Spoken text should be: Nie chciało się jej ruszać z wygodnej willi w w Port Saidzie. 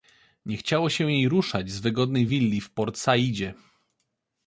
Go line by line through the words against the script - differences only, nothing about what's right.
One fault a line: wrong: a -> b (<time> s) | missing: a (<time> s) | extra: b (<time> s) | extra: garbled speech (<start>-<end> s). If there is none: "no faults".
missing: w (2.7 s)